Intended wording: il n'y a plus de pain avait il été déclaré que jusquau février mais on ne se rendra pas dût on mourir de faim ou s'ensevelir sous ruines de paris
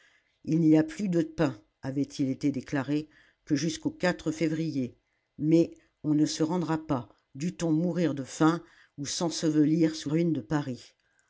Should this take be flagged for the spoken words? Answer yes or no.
no